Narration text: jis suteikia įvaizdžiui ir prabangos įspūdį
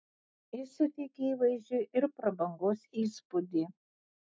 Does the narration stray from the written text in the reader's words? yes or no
no